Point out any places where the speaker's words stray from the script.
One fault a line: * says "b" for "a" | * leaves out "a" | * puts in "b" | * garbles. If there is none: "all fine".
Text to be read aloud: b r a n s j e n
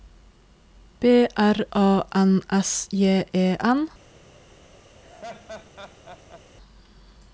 all fine